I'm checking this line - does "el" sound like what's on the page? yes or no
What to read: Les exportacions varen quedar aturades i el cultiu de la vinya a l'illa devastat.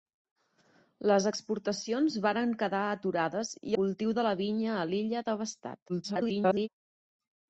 no